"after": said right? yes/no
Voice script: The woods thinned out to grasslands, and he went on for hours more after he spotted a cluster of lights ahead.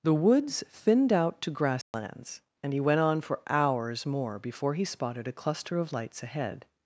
no